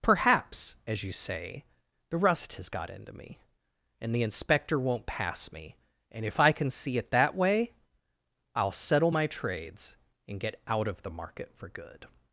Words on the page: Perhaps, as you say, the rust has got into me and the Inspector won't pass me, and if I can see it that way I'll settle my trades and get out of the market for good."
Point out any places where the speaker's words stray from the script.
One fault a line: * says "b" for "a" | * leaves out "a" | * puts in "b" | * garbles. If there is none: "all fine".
all fine